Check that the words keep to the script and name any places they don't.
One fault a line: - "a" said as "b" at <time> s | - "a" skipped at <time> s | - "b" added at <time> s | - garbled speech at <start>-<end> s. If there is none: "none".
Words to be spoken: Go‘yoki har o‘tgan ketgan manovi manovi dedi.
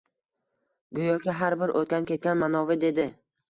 - "bir" added at 1.6 s
- "manovi" skipped at 2.8 s